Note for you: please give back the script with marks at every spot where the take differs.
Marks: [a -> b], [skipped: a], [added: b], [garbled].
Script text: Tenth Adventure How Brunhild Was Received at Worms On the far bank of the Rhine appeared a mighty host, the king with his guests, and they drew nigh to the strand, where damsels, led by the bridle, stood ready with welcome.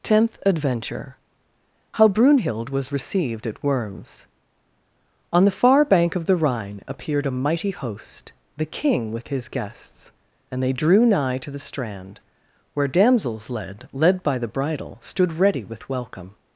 Tenth Adventure How Brunhild Was Received at Worms On the far bank of the Rhine appeared a mighty host, the king with his guests, and they drew nigh to the strand, where damsels, led [added: led] by the bridle, stood ready with welcome.